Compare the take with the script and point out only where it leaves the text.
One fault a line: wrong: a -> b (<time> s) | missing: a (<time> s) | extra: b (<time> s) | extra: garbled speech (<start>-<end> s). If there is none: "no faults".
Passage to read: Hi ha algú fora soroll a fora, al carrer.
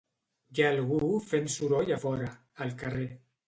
wrong: fora -> fent (1.3 s)